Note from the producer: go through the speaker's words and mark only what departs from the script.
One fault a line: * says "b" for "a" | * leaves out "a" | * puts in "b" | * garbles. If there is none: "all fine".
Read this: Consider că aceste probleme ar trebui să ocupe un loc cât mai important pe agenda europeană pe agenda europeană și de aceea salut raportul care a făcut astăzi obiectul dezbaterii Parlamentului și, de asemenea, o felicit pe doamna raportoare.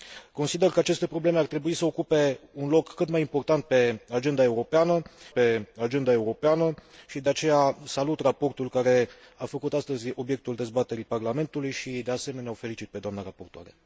all fine